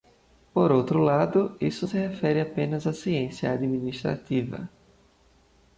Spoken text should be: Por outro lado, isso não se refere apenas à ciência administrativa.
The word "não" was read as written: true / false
false